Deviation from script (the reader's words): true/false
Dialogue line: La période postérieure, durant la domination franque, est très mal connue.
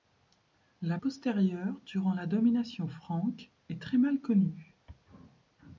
true